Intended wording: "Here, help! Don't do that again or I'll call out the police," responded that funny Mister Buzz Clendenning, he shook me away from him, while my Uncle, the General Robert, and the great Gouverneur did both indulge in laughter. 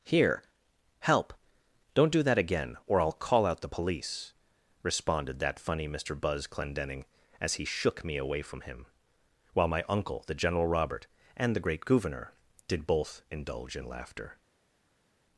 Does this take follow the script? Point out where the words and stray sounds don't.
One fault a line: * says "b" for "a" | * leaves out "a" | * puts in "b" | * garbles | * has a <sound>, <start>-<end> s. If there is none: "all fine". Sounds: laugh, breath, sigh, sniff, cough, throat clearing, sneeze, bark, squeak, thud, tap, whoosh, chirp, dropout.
* puts in "as"